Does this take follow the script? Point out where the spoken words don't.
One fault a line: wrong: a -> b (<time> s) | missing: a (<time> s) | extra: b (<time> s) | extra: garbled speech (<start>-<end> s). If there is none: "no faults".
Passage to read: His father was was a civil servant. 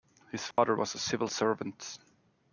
missing: was (0.9 s)